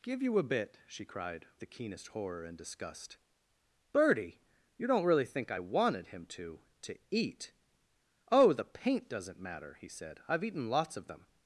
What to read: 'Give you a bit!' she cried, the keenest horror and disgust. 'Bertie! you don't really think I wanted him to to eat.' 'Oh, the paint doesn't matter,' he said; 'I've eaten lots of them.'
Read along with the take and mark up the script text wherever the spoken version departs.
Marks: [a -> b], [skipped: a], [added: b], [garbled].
'Give you a bit!' she cried, the keenest horror and disgust. 'Bertie! you don't really think I wanted him to to eat.' 'Oh, the paint doesn't matter,' he said; 'I've eaten lots of them.'